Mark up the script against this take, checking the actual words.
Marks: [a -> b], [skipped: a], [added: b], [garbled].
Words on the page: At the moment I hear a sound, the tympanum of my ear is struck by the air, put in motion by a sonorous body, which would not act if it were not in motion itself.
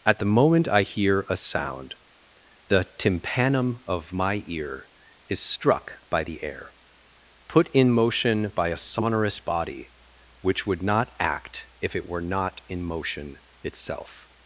At the moment I hear a sound, the tympanum of my ear is struck by the air, put in motion by a sonorous body, which would not act if it were not in motion itself.